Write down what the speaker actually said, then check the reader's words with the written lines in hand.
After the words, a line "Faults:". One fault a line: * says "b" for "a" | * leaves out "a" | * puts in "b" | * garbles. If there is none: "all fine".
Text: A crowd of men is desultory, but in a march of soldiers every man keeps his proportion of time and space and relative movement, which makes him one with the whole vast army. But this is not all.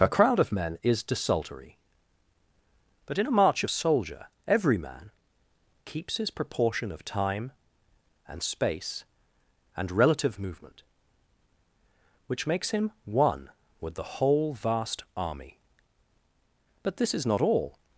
A crowd of men is desultory, but in a march of soldier every man keeps his proportion of time and space and relative movement, which makes him one with the whole vast army. But this is not all.
Faults:
* says "soldier" for "soldiers"